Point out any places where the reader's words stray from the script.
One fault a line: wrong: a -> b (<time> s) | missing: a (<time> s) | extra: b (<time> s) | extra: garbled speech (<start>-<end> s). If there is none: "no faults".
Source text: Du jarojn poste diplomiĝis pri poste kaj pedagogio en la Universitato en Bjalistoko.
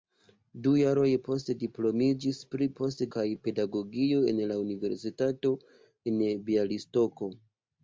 no faults